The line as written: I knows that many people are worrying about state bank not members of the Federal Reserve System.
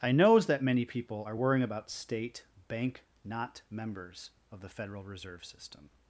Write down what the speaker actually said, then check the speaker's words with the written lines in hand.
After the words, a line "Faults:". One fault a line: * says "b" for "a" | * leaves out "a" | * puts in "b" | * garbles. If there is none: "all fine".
I knows that many people are worrying about state bank not members of the Federal Reserve System.
Faults:
all fine